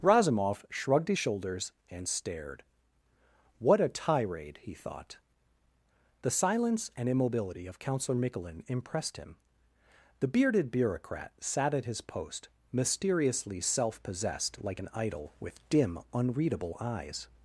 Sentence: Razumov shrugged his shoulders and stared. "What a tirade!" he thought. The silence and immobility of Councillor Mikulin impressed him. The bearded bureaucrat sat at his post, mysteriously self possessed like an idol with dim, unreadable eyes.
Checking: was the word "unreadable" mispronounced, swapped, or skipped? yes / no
no